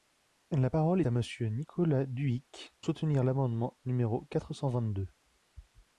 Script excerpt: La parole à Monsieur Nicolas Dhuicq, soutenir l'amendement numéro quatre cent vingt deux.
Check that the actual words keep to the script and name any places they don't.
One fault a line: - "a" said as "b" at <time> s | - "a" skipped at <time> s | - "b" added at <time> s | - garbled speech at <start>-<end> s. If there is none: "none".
none